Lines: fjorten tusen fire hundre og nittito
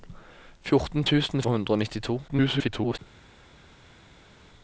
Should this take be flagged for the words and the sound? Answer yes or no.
yes